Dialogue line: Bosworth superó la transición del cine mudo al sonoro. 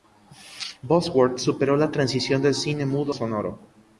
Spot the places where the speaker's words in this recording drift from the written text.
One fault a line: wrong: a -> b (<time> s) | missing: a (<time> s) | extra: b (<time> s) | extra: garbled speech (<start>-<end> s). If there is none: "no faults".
missing: al (3.1 s)